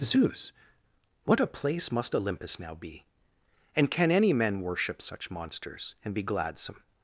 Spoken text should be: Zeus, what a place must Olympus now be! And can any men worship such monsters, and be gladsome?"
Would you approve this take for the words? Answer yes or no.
yes